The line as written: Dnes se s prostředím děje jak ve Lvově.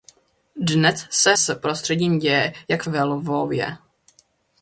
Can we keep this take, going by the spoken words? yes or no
yes